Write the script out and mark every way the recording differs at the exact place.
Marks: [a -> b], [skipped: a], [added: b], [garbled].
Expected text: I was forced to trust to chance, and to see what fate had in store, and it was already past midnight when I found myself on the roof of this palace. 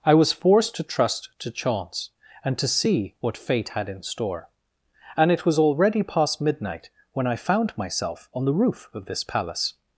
I was forced to trust to chance, and to see what fate had in store, and it was already past midnight when I found myself on the roof of this palace.